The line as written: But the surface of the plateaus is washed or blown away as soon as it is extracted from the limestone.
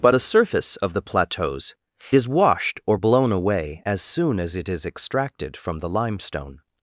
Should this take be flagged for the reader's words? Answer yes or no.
no